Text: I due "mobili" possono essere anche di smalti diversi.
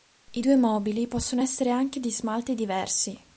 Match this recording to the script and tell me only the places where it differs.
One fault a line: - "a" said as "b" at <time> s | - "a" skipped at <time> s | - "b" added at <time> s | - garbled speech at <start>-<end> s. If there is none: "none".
none